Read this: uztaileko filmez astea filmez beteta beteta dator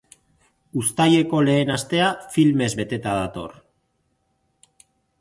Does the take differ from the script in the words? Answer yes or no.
yes